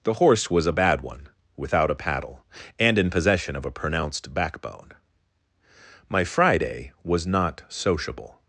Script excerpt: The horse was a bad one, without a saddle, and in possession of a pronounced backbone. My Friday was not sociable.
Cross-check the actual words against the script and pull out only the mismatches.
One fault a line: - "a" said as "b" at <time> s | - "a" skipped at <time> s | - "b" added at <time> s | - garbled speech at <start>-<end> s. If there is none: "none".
- "saddle" said as "paddle" at 2.0 s